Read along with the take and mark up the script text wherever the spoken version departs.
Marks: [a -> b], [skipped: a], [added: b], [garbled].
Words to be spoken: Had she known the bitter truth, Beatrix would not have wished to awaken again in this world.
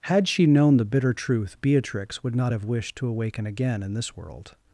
Had she known the bitter truth, Beatrix would not have wished to awaken again in this world.